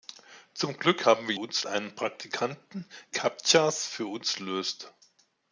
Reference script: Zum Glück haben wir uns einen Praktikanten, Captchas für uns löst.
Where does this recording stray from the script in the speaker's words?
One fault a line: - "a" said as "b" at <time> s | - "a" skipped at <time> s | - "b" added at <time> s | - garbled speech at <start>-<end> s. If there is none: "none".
none